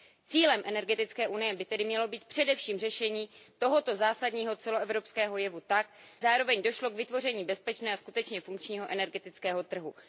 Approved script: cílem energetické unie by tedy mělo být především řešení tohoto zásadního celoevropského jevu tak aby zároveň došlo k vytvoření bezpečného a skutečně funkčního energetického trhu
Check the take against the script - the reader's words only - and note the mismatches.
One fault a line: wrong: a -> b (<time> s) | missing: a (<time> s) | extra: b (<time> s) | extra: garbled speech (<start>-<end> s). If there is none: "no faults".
missing: aby (5.9 s)